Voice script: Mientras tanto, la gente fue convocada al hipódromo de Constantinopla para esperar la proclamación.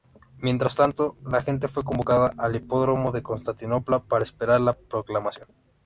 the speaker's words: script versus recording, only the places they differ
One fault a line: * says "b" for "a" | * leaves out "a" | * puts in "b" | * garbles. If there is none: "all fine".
all fine